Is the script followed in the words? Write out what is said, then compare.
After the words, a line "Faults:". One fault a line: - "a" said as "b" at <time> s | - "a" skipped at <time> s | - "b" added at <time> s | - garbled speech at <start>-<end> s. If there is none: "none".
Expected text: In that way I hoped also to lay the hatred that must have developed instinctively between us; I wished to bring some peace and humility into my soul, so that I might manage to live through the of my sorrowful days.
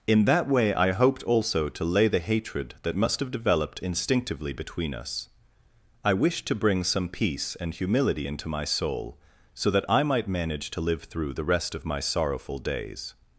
In that way I hoped also to lay the hatred that must have developed instinctively between us; I wished to bring some peace and humility into my soul, so that I might manage to live through the rest of my sorrowful days.
Faults:
- "rest" added at 11.4 s